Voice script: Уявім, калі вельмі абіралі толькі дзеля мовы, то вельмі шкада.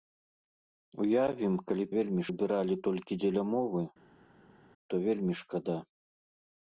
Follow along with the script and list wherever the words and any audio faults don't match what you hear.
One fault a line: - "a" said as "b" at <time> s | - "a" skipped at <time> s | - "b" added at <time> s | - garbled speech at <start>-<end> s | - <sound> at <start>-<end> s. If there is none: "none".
none